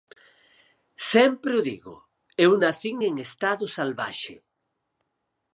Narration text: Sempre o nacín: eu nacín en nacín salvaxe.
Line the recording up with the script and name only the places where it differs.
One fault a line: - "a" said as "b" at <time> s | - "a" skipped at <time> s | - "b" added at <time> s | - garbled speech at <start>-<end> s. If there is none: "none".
- "nacín" said as "digo" at 1.7 s
- "nacín" said as "estado" at 3.3 s